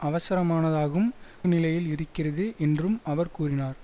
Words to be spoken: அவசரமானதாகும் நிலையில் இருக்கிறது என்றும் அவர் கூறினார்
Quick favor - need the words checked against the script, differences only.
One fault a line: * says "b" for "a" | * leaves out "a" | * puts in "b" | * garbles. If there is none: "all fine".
all fine